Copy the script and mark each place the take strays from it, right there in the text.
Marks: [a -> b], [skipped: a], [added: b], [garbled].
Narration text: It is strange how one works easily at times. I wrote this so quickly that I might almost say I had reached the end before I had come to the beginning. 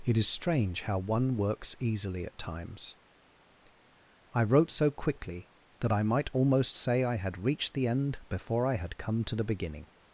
It is strange how one works easily at times. I wrote [skipped: this] so quickly that I might almost say I had reached the end before I had come to the beginning.